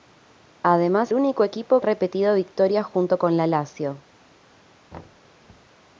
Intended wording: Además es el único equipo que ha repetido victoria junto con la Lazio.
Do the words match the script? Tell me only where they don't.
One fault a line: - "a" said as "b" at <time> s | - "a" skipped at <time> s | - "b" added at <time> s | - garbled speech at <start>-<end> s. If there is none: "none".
- "es el" skipped at 1.1 s
- "que" skipped at 1.8 s